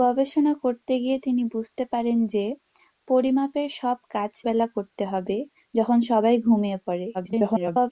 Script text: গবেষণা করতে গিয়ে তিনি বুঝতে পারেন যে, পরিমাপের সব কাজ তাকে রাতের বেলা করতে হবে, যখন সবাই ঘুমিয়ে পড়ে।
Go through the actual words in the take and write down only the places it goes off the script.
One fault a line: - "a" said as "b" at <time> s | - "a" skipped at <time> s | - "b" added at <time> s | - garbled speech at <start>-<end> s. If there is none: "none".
- "তাকে রাতের" skipped at 4.3 s
- garbled speech at 7.1-7.9 s